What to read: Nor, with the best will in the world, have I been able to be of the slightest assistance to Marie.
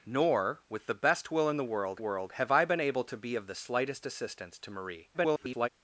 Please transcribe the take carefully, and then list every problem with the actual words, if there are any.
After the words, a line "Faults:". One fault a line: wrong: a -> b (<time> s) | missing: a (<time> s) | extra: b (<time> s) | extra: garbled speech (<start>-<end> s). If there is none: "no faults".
Nor, with the best will in the world world, have I been able to be of the slightest assistance to Marie. [garbled]
Faults:
extra: world (2.0 s)
extra: garbled speech (5.1-5.7 s)